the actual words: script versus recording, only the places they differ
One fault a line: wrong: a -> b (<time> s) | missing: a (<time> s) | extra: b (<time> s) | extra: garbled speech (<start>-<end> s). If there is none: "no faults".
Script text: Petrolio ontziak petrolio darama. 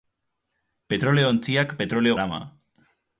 no faults